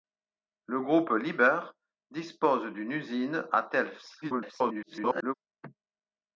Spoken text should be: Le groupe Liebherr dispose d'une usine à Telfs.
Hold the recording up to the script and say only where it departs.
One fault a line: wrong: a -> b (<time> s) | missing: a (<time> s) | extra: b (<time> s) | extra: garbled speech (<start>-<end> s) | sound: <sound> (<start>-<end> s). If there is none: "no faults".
extra: garbled speech (4.2-5.3 s)